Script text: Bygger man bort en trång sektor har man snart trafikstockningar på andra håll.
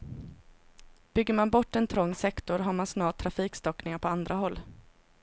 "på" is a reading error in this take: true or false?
false